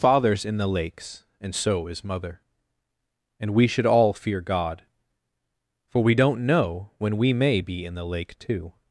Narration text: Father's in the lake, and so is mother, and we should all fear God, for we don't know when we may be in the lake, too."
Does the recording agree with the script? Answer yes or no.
no